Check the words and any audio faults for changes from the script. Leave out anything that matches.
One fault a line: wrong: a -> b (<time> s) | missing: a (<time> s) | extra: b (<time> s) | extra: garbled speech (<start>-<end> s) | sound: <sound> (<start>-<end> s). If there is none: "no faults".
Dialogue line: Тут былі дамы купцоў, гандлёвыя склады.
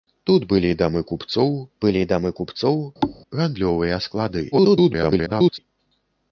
extra: былі дамы купцоў (1.9 s)
sound: thud (3.0-3.2 s)
extra: garbled speech (4.5-5.6 s)